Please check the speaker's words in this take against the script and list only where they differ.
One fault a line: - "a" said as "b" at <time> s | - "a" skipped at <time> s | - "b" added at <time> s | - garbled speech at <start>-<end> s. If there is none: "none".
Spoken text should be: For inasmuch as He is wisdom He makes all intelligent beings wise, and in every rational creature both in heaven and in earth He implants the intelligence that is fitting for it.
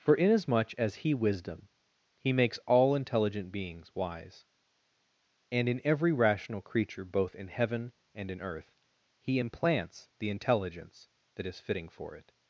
- "is" skipped at 1.1 s